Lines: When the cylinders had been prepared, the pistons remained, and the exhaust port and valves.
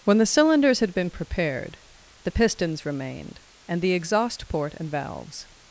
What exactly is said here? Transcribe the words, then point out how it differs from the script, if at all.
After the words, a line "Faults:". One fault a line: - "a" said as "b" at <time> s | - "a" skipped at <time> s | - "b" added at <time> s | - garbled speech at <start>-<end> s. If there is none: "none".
When the cylinders had been prepared, the pistons remained, and the exhaust port and valves.
Faults:
none